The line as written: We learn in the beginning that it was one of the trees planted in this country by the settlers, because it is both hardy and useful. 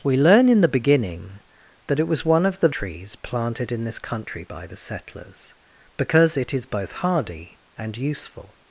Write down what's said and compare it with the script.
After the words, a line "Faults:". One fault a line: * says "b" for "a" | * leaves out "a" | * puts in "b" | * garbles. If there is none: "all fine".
We learn in the beginning that it was one of the trees planted in this country by the settlers, because it is both hardy and useful.
Faults:
all fine